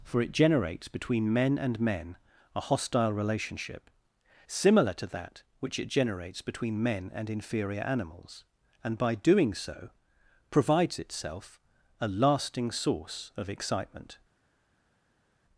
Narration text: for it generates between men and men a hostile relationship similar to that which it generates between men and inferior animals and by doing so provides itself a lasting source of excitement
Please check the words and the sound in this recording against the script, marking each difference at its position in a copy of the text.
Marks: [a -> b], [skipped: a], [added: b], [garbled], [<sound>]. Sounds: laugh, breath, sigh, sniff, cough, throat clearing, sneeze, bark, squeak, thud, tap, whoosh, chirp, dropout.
for it generates between men and men a hostile relationship similar to that which it generates between men and inferior animals and by doing so provides itself a lasting source of excitement